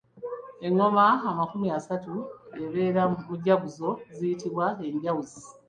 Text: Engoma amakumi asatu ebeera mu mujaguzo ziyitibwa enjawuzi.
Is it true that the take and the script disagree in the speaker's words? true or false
false